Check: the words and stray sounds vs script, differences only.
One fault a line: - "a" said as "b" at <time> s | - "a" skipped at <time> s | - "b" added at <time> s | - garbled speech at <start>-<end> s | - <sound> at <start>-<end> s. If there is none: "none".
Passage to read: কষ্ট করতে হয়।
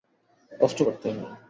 none